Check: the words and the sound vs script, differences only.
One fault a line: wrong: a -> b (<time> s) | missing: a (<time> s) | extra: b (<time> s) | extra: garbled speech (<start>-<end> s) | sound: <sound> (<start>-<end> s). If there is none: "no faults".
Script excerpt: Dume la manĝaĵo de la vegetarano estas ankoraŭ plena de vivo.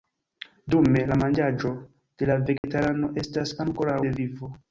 sound: dropout (2.6-2.6 s)
missing: plena (4.0 s)